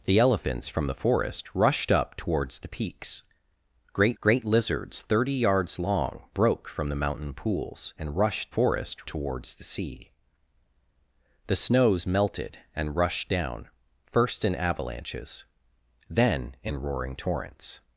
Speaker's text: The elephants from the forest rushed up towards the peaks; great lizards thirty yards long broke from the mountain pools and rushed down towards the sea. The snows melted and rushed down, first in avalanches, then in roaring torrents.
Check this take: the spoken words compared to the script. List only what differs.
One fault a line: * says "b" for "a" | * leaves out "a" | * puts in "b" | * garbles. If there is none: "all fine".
* puts in "great"
* says "forest" for "down"